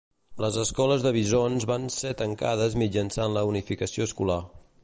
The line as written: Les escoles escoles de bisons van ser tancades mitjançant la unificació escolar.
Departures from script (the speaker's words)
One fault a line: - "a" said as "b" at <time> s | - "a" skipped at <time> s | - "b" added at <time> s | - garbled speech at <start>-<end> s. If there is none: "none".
- "escoles" skipped at 1.0 s